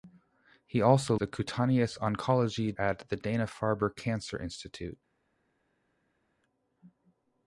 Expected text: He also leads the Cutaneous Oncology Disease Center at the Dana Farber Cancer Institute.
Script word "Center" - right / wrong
wrong